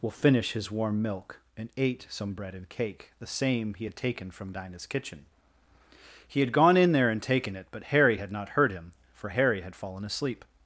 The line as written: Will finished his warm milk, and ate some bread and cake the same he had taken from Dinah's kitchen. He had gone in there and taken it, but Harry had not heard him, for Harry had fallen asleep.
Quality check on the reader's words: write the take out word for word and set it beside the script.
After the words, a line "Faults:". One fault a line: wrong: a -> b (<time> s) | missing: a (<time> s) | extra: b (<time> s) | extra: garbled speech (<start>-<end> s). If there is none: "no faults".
Will finish his warm milk, and ate some bread and cake the same he had taken from Dinah's kitchen. He had gone in there and taken it, but Harry had not heard him, for Harry had fallen asleep.
Faults:
wrong: finished -> finish (0.1 s)